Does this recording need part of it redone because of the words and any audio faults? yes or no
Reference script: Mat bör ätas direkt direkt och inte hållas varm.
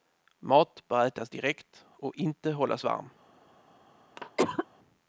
yes